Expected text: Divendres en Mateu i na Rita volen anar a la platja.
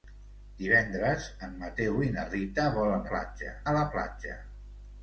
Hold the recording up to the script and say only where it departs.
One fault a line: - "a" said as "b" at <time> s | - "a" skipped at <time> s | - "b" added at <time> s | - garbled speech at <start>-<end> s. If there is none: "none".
- "anar" said as "platja" at 3.1 s